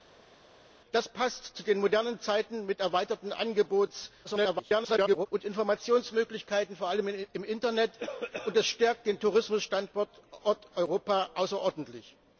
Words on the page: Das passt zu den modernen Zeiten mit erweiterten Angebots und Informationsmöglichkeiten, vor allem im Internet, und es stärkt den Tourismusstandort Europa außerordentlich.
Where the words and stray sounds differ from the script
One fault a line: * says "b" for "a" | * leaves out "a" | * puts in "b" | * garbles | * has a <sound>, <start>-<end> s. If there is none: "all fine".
* garbles